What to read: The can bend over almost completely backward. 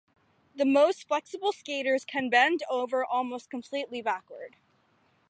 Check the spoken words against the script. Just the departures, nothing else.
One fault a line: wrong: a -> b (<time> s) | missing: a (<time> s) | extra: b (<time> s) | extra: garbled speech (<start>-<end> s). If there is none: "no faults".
extra: most flexible skaters (0.7 s)